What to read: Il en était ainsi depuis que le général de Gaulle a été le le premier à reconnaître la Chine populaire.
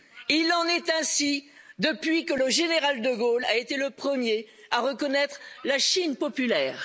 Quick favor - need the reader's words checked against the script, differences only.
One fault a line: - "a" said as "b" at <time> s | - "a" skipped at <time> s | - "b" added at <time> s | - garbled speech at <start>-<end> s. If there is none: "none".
- "était" said as "est" at 0.7 s
- "le" skipped at 3.9 s